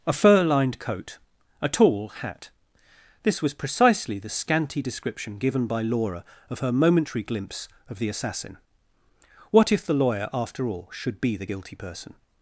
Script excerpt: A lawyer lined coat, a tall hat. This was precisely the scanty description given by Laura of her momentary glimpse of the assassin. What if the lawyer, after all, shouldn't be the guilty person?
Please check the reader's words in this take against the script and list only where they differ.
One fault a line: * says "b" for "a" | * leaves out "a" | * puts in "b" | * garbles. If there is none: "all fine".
* says "fur" for "lawyer"
* says "should" for "shouldn't"